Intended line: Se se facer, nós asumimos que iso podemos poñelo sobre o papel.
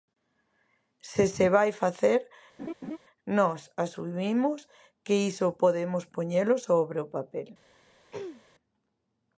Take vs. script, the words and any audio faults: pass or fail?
fail